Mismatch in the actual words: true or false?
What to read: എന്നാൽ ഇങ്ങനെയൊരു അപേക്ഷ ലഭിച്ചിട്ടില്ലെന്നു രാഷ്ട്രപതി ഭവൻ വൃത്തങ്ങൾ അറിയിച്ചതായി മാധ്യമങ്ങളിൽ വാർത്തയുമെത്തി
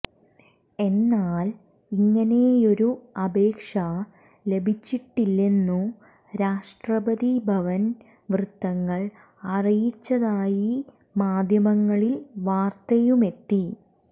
false